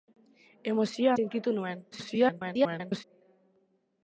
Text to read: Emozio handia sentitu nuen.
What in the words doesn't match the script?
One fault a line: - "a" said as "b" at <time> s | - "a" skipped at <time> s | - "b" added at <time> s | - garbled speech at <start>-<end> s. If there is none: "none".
- "handia" skipped at 1.1 s
- garbled speech at 1.9-3.0 s